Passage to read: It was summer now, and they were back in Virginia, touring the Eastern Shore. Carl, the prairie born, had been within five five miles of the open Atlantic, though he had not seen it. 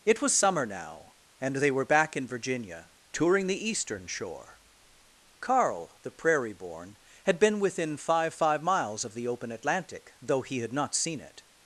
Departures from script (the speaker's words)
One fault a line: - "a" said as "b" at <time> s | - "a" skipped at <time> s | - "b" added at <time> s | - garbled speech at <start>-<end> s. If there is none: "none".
none